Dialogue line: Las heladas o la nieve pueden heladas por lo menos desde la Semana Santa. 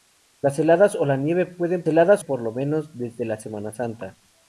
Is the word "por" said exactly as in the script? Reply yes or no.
yes